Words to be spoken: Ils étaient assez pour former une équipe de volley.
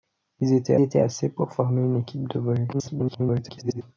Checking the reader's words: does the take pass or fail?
fail